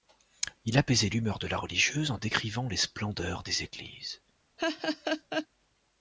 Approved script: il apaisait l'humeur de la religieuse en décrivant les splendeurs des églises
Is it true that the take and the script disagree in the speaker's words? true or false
false